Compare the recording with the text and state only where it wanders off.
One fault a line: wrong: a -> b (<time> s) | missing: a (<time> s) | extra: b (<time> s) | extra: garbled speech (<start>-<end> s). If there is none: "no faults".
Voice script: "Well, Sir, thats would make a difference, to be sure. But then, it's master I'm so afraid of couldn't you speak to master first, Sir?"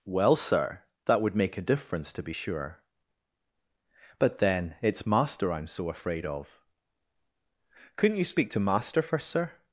wrong: thats -> that (1.1 s)